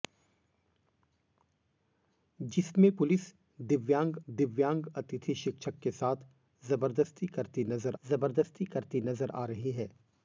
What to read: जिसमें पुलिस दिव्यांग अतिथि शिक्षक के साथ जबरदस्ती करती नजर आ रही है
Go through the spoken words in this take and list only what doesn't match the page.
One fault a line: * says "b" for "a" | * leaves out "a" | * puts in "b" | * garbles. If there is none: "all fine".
* puts in "दिव्यांग"
* puts in "जबरदस्ती करती नजर"